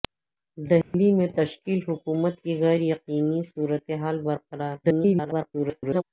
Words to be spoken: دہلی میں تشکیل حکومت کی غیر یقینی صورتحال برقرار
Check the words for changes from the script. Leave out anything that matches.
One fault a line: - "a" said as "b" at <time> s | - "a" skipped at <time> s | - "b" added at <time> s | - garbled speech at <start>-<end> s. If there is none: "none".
- garbled speech at 4.8-6.0 s